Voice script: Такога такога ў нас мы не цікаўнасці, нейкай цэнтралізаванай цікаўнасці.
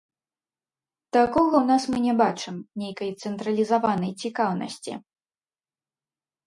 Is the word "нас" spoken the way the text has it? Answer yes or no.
yes